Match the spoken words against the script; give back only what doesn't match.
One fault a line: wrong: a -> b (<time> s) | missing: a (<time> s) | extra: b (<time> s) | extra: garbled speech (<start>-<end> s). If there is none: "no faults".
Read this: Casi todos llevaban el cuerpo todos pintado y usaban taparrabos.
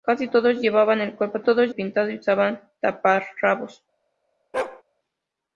no faults